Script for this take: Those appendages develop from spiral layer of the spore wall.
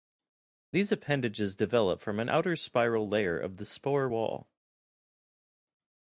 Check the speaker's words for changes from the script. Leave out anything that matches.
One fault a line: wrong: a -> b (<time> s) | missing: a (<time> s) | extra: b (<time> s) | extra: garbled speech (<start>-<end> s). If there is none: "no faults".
wrong: Those -> These (0.7 s)
extra: an outer (2.2 s)